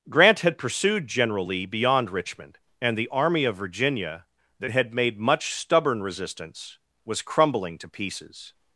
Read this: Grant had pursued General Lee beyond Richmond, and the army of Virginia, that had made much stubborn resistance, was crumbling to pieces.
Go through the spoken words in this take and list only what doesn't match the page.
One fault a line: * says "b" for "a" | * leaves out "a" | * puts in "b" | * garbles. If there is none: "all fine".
all fine